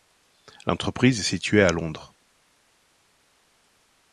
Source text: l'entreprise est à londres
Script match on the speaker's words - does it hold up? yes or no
no